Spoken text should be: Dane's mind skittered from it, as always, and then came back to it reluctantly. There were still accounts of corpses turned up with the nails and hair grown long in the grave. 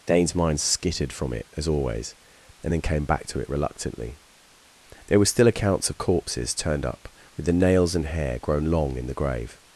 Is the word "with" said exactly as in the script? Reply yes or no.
yes